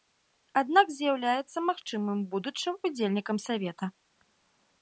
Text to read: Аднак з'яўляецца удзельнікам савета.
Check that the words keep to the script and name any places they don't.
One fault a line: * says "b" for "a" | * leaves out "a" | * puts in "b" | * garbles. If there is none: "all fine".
* puts in "магчымым будучым"